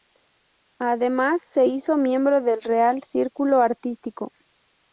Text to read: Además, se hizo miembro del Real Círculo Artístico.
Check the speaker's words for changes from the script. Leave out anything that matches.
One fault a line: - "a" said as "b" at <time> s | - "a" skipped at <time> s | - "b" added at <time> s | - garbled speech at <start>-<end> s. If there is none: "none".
none